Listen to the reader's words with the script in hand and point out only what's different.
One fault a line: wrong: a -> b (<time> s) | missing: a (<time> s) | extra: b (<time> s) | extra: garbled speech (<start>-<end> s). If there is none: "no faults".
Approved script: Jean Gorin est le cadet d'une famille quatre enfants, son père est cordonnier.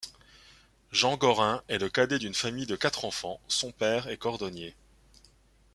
extra: de (2.7 s)